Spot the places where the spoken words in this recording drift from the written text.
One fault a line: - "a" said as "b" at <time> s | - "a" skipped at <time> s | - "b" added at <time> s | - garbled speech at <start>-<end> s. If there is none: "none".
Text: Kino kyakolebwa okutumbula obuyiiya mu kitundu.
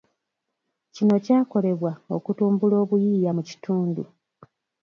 none